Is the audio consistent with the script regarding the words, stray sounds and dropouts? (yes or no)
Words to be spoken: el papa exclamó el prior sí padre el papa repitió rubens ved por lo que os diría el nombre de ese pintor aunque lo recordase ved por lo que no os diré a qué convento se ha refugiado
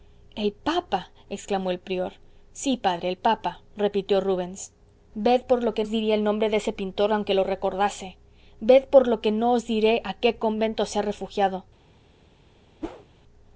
no